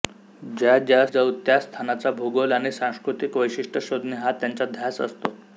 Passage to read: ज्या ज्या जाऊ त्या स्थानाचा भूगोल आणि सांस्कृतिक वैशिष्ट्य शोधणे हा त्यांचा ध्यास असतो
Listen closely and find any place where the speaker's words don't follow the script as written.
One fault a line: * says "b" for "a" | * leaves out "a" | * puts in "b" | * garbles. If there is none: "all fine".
all fine